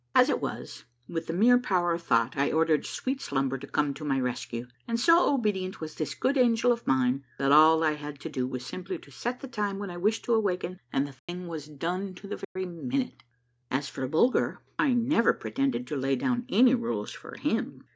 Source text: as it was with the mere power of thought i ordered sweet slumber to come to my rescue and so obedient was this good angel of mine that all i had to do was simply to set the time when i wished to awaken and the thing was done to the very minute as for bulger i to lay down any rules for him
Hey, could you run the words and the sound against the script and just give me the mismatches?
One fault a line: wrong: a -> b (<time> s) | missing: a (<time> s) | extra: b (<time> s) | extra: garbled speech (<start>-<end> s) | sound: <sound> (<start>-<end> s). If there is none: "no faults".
sound: dropout (11.2-11.3 s)
sound: dropout (12.4-12.6 s)
extra: never pretended (14.9 s)